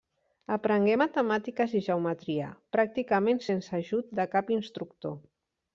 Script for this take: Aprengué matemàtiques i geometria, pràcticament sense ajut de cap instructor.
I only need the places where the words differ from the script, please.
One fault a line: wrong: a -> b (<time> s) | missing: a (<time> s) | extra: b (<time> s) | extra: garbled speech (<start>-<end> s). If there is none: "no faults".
no faults